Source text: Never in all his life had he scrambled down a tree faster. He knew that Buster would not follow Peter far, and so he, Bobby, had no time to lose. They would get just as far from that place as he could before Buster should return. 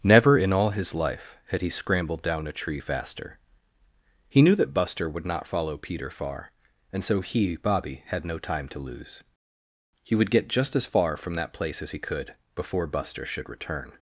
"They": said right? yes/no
no